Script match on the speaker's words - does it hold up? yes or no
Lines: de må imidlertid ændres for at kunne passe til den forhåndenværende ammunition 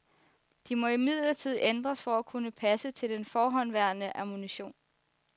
yes